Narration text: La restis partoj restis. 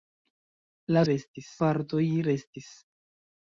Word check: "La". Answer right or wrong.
right